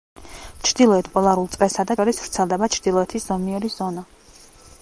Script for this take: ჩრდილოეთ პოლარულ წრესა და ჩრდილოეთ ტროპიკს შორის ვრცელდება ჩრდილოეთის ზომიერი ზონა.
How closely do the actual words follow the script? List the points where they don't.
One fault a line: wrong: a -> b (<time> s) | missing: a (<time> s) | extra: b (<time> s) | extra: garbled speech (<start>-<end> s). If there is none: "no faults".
missing: ჩრდილოეთ ტროპიკს (2.0 s)